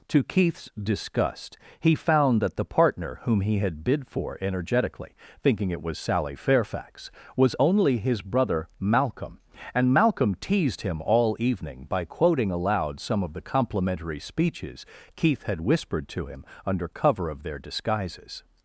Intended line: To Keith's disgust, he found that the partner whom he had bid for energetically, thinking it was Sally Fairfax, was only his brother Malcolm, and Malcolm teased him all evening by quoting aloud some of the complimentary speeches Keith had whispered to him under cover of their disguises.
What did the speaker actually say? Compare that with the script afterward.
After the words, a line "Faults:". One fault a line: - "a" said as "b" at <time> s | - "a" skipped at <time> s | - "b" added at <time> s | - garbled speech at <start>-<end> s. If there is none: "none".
To Keith's disgust, he found that the partner whom he had bid for energetically, thinking it was Sally Fairfax, was only his brother Malcolm, and Malcolm teased him all evening by quoting aloud some of the complimentary speeches Keith had whispered to him under cover of their disguises.
Faults:
none